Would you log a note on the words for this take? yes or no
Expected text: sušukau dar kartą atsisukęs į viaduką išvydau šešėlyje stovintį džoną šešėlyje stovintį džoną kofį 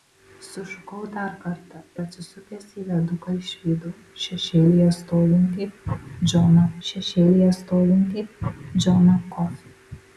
no